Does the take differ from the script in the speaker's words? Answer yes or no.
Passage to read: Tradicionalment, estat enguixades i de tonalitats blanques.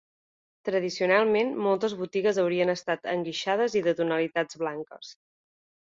yes